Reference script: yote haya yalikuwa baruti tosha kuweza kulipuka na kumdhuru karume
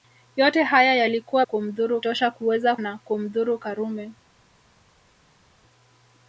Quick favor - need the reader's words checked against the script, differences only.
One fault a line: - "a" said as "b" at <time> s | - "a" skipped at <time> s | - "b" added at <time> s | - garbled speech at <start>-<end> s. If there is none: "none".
- "baruti" said as "kumdhuru" at 1.4 s
- "kulipuka" skipped at 2.8 s